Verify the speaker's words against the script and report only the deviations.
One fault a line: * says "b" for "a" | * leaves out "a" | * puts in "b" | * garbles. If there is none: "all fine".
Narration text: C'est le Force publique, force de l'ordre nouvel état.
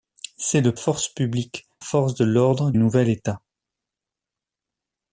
all fine